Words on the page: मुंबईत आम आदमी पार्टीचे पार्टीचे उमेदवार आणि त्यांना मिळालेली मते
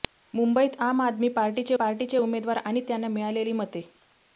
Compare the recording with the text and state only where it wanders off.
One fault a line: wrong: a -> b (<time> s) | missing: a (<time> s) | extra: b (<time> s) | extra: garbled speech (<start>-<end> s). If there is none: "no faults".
no faults